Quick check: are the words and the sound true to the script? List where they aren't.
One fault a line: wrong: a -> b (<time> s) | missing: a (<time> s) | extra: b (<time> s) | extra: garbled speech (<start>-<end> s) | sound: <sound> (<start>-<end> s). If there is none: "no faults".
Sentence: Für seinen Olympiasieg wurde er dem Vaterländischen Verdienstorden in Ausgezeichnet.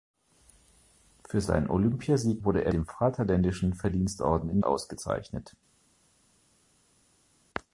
no faults